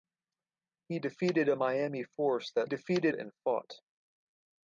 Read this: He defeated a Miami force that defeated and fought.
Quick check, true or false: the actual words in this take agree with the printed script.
true